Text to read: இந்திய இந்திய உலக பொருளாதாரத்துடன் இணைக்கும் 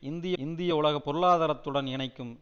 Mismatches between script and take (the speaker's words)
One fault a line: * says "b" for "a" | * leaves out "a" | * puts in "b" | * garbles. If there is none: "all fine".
all fine